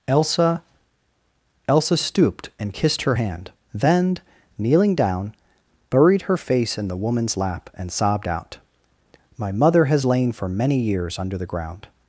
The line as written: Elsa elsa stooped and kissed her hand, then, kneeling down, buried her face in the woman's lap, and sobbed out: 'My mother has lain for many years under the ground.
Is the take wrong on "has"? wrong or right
right